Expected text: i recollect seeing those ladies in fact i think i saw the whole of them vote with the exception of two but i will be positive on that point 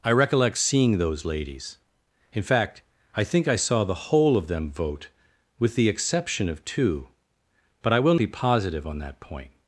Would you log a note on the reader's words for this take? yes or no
no